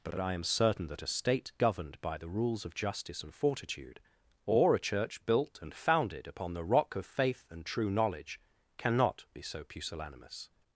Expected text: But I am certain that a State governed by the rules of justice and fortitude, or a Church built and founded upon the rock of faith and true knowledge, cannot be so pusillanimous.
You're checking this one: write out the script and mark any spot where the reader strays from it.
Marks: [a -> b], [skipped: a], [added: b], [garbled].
But [added: but] I am certain that a State governed by the rules of justice and fortitude, or a Church built and founded upon the rock of faith and true knowledge, cannot be so pusillanimous.